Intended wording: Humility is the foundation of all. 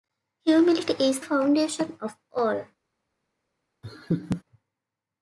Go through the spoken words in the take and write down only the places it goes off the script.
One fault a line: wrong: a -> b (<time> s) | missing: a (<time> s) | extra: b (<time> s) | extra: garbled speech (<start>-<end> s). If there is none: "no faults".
missing: the (1.2 s)